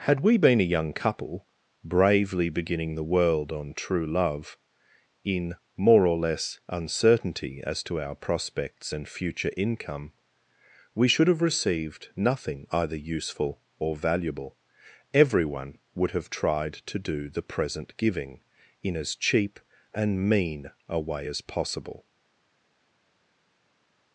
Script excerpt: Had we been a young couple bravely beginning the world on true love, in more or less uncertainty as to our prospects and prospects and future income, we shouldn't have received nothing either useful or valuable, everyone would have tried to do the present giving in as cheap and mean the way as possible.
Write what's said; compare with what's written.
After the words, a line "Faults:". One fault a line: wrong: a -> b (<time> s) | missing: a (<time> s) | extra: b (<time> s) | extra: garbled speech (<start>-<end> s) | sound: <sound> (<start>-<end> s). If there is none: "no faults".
Had we been a young couple bravely beginning the world on true love, in more or less uncertainty as to our prospects and future income, we should have received nothing either useful or valuable, everyone would have tried to do the present giving in as cheap and mean a way as possible.
Faults:
missing: prospects and (9.1 s)
wrong: shouldn't -> should (11.1 s)
wrong: the -> a (20.9 s)